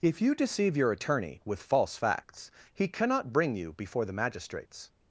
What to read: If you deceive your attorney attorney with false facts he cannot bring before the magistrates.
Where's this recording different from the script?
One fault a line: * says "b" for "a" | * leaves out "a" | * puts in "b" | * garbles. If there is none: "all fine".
* leaves out "attorney"
* puts in "you"